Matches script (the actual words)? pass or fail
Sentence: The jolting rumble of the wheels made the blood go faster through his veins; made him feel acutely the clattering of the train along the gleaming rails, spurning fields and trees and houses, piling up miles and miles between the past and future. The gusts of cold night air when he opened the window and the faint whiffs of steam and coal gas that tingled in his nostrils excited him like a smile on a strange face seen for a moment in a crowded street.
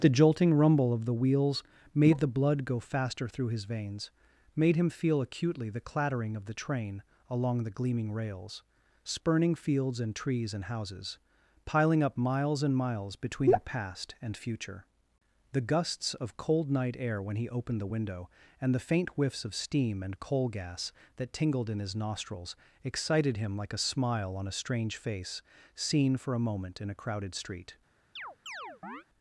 pass